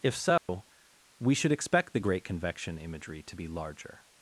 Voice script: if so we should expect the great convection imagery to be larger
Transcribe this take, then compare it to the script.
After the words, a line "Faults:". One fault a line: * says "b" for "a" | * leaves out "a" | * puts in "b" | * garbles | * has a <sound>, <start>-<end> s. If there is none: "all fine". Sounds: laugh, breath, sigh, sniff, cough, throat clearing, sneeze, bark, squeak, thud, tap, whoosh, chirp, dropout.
if so we should expect the great convection imagery to be larger
Faults:
* has a dropout, 0.4-0.5 s